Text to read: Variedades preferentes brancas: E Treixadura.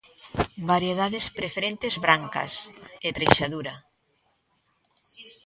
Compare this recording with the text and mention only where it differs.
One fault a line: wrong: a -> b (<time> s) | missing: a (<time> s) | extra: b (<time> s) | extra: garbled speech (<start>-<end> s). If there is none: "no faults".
no faults